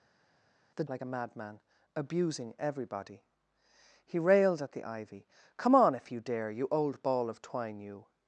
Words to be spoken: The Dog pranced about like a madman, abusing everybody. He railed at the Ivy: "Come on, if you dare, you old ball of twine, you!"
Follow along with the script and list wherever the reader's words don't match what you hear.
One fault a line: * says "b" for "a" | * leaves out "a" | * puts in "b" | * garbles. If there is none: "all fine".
* leaves out "Dog pranced about"